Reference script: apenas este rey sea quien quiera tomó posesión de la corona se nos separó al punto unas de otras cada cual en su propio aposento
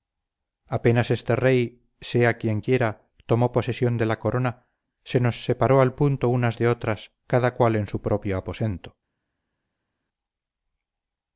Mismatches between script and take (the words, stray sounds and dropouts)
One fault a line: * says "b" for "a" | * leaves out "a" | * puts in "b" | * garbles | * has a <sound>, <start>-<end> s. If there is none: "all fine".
all fine